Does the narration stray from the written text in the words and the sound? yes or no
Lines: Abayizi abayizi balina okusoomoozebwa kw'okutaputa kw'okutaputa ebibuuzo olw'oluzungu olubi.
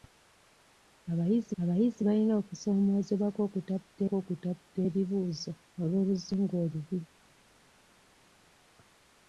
no